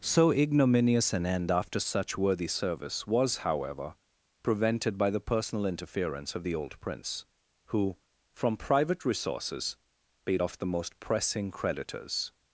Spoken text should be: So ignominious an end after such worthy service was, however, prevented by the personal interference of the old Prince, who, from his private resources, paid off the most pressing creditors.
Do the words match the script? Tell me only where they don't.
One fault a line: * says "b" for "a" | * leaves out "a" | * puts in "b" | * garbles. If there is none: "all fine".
* leaves out "his"